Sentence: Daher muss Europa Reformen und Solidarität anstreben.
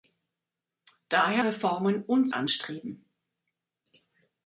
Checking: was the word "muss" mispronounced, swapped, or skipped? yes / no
yes